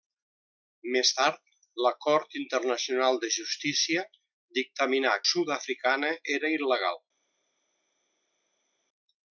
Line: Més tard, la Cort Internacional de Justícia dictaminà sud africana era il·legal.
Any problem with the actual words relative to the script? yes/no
no